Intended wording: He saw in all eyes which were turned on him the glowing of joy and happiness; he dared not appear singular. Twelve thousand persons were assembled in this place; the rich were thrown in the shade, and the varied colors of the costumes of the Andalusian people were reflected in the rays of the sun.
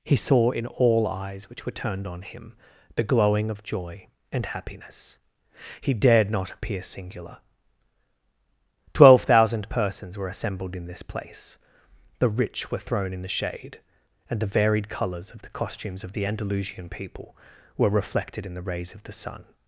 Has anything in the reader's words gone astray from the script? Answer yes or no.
no